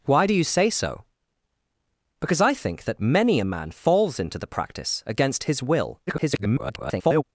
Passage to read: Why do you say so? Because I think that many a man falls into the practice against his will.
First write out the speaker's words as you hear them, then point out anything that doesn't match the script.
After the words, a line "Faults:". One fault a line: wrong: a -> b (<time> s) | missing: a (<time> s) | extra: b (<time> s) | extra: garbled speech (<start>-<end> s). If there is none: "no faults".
Why do you say so? Because I think that many a man falls into the practice against his will. [garbled]
Faults:
extra: garbled speech (6.1-7.2 s)